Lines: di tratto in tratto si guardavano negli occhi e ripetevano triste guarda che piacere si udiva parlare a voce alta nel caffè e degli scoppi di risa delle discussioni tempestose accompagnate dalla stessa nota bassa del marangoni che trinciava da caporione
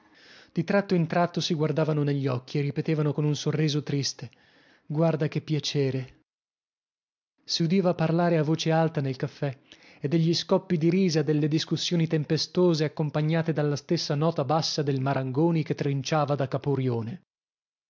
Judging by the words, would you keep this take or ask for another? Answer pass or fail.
fail